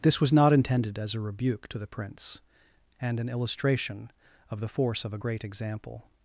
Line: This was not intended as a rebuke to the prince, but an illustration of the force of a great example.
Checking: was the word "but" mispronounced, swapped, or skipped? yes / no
yes